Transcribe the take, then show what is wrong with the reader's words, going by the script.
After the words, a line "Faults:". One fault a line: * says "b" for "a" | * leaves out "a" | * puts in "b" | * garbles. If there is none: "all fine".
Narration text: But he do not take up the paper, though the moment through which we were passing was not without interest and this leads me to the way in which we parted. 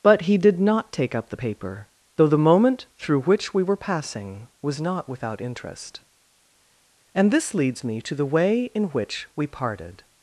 But he did not take up the paper, though the moment through which we were passing was not without interest and this leads me to the way in which we parted.
Faults:
* says "did" for "do"